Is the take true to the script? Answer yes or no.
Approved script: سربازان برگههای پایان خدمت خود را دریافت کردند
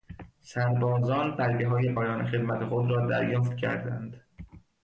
yes